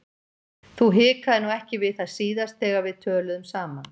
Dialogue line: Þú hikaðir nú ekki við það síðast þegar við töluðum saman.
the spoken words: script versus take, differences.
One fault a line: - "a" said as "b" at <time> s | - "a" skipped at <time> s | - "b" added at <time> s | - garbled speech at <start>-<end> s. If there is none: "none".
none